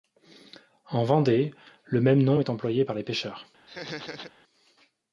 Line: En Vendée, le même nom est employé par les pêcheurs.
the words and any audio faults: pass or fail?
fail